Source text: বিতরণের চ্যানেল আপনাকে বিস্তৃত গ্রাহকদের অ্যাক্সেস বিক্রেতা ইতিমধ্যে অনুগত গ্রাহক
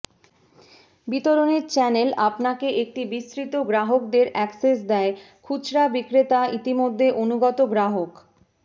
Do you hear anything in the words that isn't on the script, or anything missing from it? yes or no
yes